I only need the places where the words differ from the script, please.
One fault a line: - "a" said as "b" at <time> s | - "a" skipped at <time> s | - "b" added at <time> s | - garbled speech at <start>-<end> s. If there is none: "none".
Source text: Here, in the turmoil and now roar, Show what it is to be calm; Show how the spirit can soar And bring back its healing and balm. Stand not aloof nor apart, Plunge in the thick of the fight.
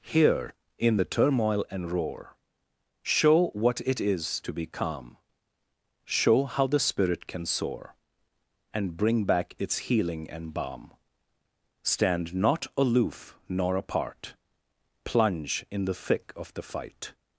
- "now" skipped at 1.9 s